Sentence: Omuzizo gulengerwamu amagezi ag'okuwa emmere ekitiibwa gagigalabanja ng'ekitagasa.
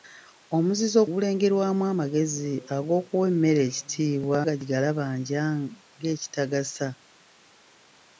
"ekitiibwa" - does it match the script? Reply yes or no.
yes